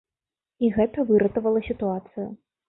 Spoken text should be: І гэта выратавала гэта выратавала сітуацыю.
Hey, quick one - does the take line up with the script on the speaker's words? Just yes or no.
no